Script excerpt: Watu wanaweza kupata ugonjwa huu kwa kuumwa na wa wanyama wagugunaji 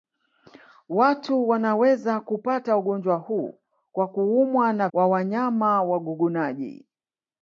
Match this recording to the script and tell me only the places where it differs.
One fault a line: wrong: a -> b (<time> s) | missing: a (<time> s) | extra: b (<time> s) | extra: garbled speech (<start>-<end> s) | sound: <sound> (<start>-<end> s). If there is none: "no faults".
no faults